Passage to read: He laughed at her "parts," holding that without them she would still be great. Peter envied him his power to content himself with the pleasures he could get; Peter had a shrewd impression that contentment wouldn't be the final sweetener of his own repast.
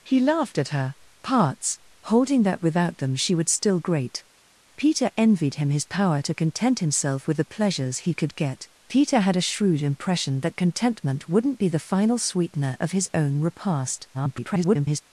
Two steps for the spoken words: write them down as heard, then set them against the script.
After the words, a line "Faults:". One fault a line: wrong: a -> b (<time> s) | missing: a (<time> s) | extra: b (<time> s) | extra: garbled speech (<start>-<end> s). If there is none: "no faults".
He laughed at her "parts," holding that without them she would still great. Peter envied him his power to content himself with the pleasures he could get; Peter had a shrewd impression that contentment wouldn't be the final sweetener of his own repast. [garbled]
Faults:
missing: be (3.8 s)
extra: garbled speech (14.1-15.0 s)